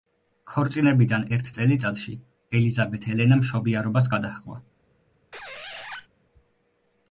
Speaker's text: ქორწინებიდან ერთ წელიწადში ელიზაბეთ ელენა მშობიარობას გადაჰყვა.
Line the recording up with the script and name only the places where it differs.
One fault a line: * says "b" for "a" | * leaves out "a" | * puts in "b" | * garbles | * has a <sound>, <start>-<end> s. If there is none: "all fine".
* has a squeak, 5.3-6.1 s